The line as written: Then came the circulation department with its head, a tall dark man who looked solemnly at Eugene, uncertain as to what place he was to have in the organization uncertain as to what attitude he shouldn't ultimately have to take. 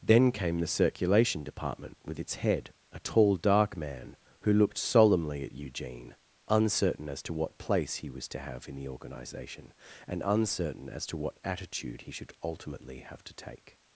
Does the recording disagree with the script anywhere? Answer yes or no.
yes